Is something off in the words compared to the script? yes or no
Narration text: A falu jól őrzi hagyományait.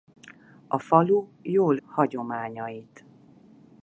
yes